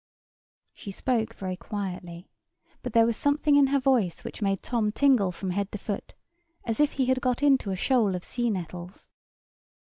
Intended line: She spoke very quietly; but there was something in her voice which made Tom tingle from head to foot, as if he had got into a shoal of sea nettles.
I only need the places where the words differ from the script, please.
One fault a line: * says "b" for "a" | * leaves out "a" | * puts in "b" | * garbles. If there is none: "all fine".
all fine